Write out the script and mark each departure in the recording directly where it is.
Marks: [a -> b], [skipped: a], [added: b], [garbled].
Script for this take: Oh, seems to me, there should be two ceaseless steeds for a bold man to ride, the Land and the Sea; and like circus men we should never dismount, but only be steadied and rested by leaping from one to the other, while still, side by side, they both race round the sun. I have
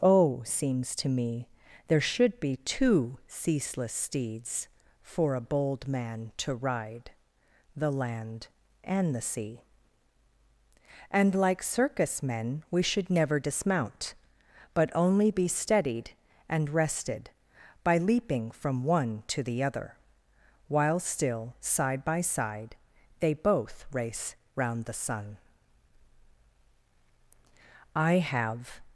Oh, seems to me, there should be two ceaseless steeds for a bold man to ride, the Land and the Sea; and like circus men we should never dismount, but only be steadied and rested by leaping from one to the other, while still, side by side, they both race round the sun. I have